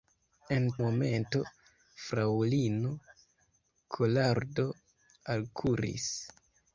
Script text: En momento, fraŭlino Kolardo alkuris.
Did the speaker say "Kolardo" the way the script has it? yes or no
yes